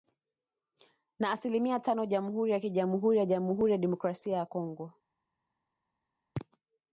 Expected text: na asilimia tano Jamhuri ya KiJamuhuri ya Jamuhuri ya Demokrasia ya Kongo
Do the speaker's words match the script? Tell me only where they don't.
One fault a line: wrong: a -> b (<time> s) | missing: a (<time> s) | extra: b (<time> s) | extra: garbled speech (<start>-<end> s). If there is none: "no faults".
no faults